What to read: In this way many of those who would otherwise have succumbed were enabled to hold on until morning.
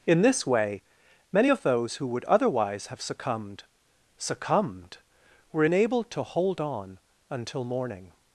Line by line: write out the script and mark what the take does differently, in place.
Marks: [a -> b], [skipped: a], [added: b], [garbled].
In this way many of those who would otherwise have succumbed [added: succumbed] were enabled to hold on until morning.